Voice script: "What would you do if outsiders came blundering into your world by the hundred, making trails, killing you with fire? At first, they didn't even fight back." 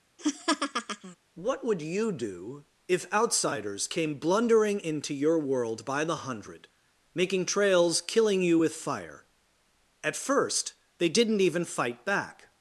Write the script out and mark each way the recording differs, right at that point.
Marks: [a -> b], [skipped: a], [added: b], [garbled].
"What would you do if outsiders came blundering into your world by the hundred, making trails, killing you with fire? At first, they didn't even fight back."